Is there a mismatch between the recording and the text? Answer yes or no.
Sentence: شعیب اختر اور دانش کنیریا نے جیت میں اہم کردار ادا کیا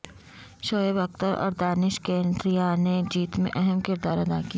no